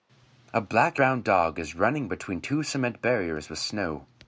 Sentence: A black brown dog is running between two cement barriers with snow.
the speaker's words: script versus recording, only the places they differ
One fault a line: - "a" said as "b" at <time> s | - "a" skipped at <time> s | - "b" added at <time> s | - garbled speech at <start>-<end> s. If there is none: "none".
none